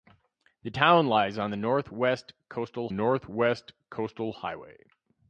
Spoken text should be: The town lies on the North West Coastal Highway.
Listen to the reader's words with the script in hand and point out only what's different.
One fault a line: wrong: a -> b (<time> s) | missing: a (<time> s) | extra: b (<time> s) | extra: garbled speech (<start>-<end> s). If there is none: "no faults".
extra: North West Coastal (2.9 s)